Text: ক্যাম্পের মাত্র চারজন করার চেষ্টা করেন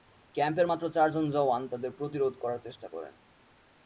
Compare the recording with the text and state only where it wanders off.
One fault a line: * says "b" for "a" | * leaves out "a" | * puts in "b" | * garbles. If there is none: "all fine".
* puts in "জওয়ান তাদের প্রতিরোধ"